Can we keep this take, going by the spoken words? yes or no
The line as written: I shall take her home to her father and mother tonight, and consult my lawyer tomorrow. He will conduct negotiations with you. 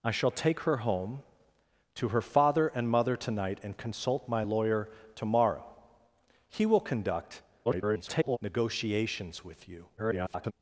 no